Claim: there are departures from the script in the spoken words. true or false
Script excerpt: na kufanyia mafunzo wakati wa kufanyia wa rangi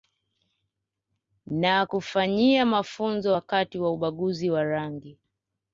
true